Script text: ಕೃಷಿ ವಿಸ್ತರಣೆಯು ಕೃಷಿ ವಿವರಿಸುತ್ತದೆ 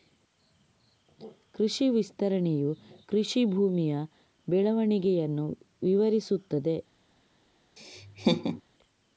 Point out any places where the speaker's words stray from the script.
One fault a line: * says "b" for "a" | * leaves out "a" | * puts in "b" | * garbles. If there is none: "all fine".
* puts in "ಭೂಮಿಯ ಬೆಳವಣಿಗೆಯನ್ನು"